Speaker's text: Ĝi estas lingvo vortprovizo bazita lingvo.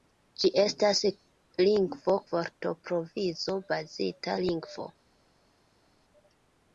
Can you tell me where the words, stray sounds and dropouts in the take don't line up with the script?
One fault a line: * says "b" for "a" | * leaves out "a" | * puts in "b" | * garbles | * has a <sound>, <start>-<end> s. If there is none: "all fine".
all fine